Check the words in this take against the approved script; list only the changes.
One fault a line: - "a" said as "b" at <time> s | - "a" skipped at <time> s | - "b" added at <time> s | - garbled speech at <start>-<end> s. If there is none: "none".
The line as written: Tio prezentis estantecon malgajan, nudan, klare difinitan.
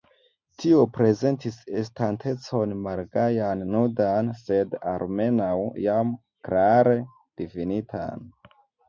- "sed almenaŭ jam" added at 4.4 s